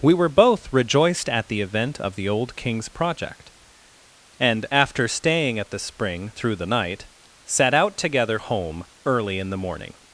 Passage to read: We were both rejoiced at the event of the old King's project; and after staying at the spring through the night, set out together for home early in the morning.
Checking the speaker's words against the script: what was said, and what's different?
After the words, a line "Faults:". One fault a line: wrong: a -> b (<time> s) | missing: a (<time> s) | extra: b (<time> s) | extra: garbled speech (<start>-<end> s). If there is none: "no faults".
We were both rejoiced at the event of the old King's project; and after staying at the spring through the night, set out together home early in the morning.
Faults:
missing: for (8.4 s)